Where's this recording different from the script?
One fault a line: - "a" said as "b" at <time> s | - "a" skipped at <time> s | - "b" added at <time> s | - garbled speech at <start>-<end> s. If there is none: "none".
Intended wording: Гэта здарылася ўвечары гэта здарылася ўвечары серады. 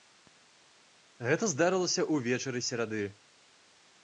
- "гэта здарылася ўвечары" skipped at 2.6 s